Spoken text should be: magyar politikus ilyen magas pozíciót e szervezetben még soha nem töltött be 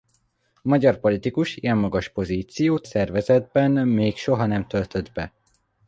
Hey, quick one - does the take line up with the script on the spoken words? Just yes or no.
no